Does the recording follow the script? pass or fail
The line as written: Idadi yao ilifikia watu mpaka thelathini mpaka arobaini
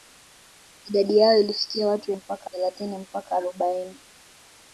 pass